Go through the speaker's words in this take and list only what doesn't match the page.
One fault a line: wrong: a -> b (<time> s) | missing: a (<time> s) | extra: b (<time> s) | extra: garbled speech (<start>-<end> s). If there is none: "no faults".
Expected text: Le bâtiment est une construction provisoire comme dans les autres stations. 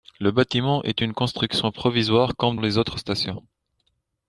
missing: dans (2.5 s)